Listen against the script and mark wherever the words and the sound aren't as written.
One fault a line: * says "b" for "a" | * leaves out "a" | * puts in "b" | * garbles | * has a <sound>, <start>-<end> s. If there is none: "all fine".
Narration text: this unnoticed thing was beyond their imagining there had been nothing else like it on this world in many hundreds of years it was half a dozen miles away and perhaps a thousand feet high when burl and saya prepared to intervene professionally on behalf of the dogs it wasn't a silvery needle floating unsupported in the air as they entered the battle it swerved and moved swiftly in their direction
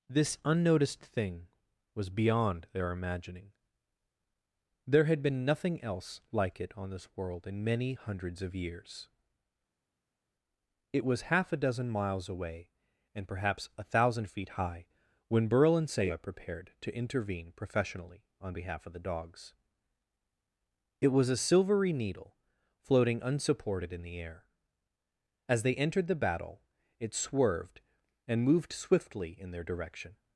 * says "was" for "wasn't"